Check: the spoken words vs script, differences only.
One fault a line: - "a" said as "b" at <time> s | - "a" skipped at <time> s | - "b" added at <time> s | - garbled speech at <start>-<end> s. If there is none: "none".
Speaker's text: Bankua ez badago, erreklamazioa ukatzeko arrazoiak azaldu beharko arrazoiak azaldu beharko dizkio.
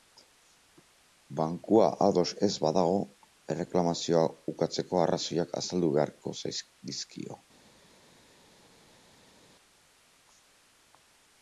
- "ados" added at 2.0 s
- "arrazoiak azaldu beharko" skipped at 6.4 s